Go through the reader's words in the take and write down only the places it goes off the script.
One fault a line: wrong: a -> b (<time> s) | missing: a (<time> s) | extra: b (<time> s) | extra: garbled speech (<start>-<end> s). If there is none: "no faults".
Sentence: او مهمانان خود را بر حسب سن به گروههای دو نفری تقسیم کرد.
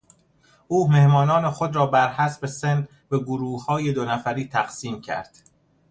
no faults